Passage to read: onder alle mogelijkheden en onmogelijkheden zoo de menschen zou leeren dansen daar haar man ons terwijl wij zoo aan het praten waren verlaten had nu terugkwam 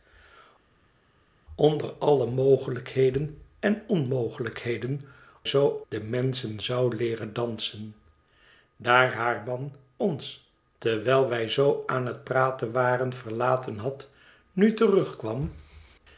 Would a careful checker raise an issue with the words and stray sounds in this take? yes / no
no